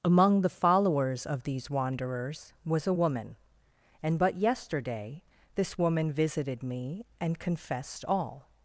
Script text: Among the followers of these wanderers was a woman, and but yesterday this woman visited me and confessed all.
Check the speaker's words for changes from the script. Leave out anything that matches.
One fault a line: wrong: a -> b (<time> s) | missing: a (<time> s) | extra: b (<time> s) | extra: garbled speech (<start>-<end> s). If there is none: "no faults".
no faults